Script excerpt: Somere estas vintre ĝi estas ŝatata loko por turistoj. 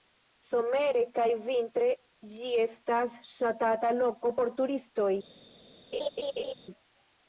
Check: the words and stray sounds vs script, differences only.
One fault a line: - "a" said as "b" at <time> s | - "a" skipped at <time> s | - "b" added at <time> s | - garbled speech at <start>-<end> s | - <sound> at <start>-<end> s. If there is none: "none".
- "estas" said as "kaj" at 1.2 s
- laugh at 5.9-6.5 s